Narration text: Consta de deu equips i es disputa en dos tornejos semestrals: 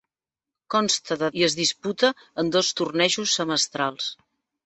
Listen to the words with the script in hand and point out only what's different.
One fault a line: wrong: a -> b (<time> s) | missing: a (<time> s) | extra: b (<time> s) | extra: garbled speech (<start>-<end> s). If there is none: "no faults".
missing: deu equips (1.3 s)